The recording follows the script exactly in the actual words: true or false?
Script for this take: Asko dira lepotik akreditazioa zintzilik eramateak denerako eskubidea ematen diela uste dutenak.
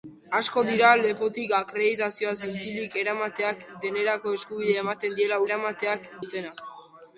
false